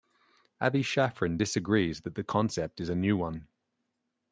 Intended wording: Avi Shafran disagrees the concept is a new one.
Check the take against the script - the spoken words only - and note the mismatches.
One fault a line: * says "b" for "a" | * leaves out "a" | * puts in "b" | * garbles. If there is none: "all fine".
* puts in "that"